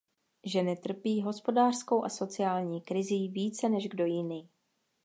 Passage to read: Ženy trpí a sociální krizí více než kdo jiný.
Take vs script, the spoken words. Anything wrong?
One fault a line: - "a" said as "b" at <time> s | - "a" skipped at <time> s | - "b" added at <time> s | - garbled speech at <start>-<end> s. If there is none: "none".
- "hospodářskou" added at 1.2 s